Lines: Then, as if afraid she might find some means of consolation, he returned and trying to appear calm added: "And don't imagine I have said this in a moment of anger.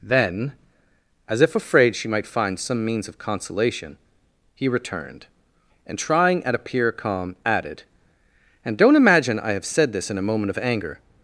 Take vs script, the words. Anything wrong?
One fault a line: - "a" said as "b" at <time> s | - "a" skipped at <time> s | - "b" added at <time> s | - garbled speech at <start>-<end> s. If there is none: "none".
- "to" said as "at" at 6.4 s